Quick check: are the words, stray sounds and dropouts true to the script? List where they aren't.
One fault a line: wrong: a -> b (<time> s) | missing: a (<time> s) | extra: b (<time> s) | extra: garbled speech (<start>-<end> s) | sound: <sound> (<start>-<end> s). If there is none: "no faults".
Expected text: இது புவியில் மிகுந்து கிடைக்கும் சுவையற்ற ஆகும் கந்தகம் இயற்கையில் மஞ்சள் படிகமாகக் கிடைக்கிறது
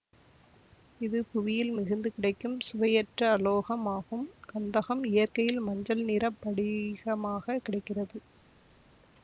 extra: அலோகம் (3.3 s)
extra: நிற (6.0 s)